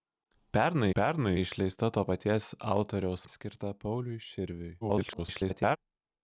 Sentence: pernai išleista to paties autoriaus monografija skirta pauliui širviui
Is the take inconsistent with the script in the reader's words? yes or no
yes